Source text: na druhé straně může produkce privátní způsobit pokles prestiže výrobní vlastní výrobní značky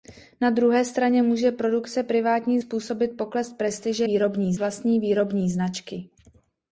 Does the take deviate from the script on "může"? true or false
false